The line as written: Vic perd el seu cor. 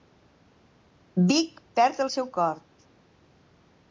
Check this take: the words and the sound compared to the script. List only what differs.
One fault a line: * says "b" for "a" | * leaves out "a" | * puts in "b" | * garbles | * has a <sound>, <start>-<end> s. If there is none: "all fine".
all fine